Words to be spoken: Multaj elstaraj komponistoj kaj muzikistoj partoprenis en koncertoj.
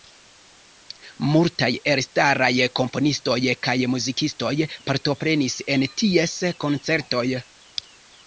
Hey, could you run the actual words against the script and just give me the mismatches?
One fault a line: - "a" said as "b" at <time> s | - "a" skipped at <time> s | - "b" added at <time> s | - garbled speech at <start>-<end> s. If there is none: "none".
- "ties" added at 6.0 s